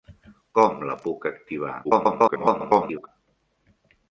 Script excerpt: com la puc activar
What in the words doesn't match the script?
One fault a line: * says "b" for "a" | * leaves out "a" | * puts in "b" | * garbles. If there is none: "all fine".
* garbles